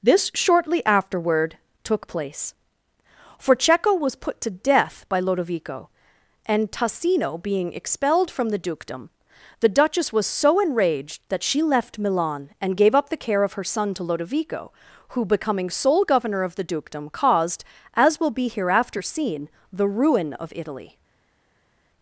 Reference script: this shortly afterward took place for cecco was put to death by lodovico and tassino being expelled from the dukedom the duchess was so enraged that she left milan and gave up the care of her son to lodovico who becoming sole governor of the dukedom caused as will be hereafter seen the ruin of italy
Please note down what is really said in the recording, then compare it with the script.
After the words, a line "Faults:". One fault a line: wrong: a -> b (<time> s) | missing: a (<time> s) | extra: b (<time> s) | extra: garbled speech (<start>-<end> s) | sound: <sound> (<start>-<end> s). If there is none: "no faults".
this shortly afterward took place for cecco was put to death by lodovico and tassino being expelled from the dukedom the duchess was so enraged that she left milan and gave up the care of her son to lodovico who becoming sole governor of the dukedom caused as will be hereafter seen the ruin of italy
Faults:
no faults